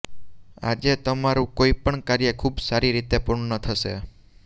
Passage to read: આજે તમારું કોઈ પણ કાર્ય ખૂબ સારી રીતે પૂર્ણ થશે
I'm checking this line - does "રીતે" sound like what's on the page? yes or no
yes